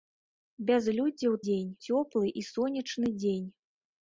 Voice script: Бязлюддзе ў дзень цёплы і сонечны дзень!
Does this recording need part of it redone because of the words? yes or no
no